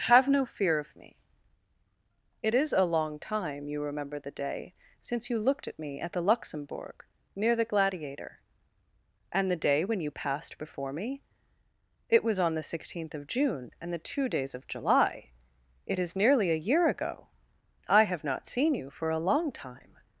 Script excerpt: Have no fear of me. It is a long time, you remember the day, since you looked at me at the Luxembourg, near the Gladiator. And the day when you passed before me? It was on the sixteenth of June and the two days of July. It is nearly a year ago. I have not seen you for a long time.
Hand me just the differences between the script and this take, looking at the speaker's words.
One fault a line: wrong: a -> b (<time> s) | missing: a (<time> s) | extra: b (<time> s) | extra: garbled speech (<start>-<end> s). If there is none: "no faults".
no faults